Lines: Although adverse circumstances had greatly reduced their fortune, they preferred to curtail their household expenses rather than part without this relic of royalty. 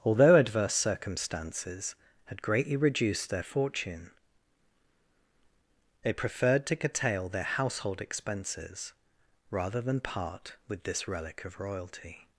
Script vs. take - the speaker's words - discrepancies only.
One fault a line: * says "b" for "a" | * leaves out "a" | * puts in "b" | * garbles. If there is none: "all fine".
* says "with" for "without"